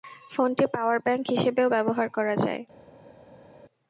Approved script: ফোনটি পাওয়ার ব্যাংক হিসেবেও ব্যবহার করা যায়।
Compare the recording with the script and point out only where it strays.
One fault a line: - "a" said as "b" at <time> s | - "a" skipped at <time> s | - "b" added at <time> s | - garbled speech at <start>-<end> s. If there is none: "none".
none